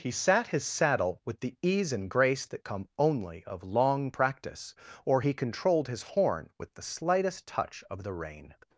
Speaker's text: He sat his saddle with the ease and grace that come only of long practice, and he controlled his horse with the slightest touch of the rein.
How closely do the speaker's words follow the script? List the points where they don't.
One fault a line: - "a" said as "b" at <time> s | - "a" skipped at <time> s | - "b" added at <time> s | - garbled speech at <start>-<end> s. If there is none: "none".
- "and" said as "or" at 5.0 s
- "horse" said as "horn" at 6.0 s